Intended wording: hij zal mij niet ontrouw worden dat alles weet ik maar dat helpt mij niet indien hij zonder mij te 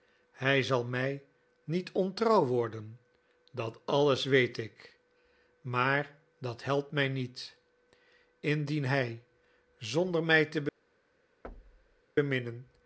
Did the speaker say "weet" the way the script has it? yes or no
yes